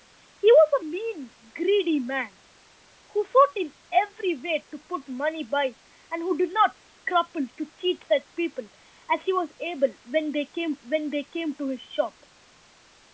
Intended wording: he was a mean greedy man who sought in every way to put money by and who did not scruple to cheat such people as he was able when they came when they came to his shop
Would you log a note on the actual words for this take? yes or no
no